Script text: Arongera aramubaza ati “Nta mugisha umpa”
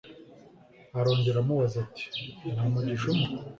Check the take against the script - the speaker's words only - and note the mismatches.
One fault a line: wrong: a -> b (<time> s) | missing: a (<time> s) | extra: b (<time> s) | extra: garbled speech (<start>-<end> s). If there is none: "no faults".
no faults